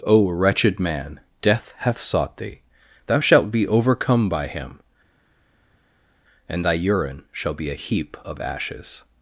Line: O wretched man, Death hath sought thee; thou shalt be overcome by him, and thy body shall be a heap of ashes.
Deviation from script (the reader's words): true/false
true